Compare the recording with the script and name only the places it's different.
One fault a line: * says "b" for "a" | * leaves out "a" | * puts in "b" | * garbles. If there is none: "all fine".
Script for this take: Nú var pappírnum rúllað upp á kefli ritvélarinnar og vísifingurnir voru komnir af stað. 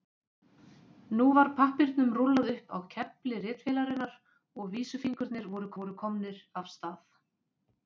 * puts in "voru"